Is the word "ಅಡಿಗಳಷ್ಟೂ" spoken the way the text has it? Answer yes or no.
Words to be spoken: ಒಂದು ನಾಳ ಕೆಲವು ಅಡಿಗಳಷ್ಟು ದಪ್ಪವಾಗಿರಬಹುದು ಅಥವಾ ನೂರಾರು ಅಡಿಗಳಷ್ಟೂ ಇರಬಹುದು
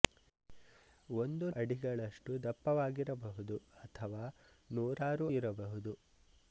no